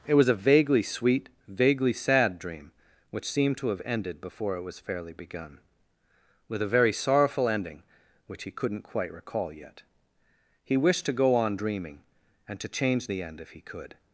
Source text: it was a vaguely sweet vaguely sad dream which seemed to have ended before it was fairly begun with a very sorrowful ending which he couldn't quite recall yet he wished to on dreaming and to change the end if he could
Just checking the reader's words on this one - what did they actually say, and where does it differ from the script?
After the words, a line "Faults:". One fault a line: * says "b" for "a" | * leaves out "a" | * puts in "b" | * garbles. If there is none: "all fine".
it was a vaguely sweet vaguely sad dream which seemed to have ended before it was fairly begun with a very sorrowful ending which he couldn't quite recall yet he wished to go on dreaming and to change the end if he could
Faults:
* puts in "go"